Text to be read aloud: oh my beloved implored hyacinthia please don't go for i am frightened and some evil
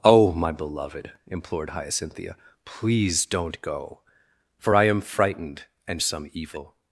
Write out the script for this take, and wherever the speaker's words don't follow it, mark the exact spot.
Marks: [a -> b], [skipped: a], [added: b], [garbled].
oh my beloved implored hyacinthia please don't go for i am frightened and some evil